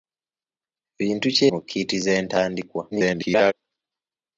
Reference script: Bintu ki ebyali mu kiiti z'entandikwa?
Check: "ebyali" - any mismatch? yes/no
yes